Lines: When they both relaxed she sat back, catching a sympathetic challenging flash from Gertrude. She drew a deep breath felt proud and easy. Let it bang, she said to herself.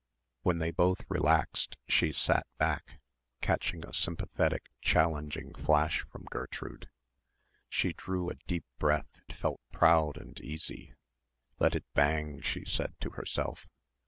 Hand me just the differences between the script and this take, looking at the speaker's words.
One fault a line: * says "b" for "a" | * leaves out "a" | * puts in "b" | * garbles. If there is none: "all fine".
all fine